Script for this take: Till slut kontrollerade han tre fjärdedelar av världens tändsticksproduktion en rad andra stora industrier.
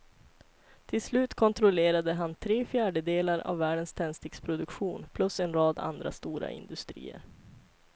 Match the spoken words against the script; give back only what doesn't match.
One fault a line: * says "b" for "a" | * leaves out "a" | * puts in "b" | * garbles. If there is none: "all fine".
* puts in "plus"